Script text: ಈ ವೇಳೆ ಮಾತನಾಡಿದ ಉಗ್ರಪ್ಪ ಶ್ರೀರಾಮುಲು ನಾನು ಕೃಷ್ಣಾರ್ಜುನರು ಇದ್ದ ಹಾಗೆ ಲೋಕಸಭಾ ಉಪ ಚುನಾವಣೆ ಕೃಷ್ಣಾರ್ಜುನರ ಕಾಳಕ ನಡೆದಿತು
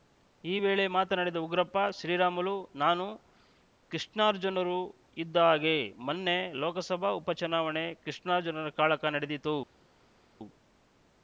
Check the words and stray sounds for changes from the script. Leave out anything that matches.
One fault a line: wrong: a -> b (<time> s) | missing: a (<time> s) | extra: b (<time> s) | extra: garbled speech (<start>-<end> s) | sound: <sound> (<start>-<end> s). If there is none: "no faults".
extra: ಮೊನ್ನೆ (6.0 s)